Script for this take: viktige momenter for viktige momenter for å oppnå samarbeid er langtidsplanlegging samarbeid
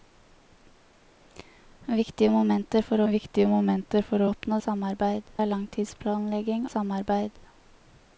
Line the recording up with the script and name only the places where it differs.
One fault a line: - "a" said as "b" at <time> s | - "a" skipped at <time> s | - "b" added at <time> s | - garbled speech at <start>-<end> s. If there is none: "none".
none